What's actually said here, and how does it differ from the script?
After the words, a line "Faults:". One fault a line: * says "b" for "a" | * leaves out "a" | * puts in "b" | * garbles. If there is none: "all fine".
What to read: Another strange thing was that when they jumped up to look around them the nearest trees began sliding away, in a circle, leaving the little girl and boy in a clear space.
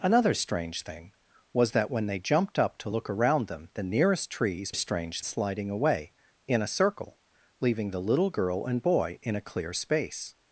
Another strange thing was that when they jumped up to look around them the nearest trees strange sliding away, in a circle, leaving the little girl and boy in a clear space.
Faults:
* says "strange" for "began"